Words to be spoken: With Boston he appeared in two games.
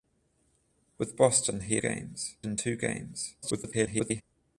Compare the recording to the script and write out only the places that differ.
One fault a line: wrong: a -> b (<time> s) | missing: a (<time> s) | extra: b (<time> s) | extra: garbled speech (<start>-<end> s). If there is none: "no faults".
wrong: appeared -> games (1.8 s)
extra: garbled speech (3.4-4.2 s)